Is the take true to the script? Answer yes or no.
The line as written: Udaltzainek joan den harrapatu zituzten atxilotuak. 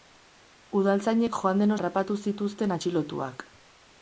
yes